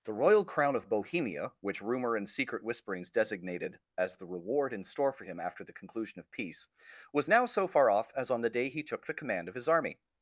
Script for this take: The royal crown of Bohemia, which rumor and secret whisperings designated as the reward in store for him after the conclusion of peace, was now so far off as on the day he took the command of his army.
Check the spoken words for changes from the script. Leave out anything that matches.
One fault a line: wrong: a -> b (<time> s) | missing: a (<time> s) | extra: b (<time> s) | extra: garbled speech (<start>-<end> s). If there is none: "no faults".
no faults